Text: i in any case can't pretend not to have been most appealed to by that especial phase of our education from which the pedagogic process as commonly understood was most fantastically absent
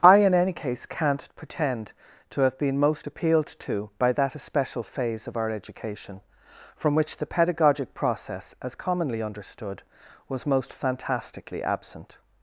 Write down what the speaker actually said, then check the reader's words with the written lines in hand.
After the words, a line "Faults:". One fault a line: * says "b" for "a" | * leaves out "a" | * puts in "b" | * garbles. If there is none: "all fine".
i in any case can't pretend to have been most appealed to by that especial phase of our education from which the pedagogic process as commonly understood was most fantastically absent
Faults:
* leaves out "not"